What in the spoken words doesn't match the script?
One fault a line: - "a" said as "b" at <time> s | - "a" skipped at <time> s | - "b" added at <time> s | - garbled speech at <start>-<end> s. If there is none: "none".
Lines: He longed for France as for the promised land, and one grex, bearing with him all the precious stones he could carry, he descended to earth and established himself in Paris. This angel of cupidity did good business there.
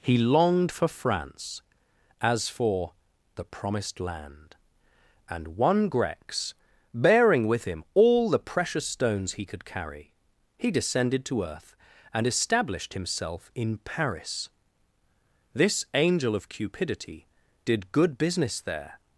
none